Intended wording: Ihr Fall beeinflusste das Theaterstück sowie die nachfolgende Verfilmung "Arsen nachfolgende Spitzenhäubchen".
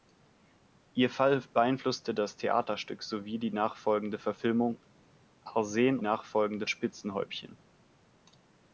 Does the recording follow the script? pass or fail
pass